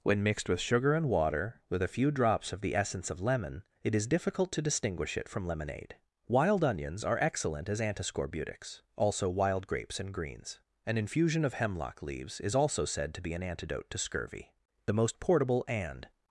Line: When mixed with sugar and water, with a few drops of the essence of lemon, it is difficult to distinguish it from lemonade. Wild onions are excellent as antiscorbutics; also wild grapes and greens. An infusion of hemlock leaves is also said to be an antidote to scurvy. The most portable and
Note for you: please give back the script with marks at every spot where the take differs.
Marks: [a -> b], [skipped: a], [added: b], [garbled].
When mixed with sugar and water, with a few drops of the essence of lemon, it is difficult to distinguish it from lemonade. Wild onions are excellent as antiscorbutics; also wild grapes and greens. An infusion of hemlock leaves is also said to be an antidote to scurvy. The most portable and